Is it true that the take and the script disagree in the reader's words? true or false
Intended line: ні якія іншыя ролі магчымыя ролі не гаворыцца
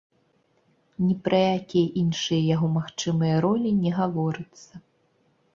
true